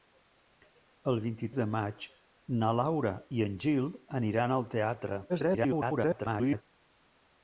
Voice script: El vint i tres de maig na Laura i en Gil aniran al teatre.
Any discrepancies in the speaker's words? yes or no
yes